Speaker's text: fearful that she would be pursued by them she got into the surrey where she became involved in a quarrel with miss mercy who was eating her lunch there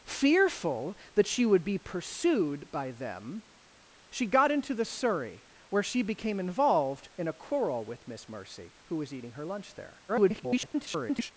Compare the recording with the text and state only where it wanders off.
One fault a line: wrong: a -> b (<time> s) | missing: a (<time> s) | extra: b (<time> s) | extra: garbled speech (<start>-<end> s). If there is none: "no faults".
extra: garbled speech (10.1-11.3 s)